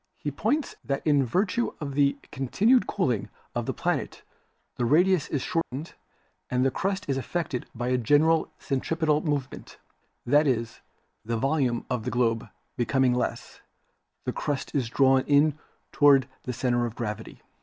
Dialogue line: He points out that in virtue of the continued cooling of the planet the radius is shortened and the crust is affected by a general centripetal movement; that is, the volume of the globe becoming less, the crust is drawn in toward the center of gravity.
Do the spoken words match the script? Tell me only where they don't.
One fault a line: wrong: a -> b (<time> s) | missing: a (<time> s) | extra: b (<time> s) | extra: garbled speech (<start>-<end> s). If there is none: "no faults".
missing: out (0.7 s)